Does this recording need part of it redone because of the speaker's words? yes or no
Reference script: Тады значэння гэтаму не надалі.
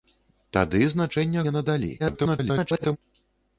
yes